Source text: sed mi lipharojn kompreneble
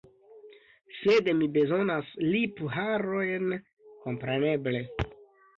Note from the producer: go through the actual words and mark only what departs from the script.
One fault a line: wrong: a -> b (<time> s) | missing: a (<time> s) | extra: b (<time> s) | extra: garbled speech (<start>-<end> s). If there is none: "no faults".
extra: bezonas (1.6 s)